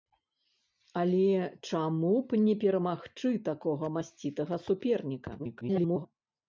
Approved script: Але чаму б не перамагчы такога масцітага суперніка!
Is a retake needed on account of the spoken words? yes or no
yes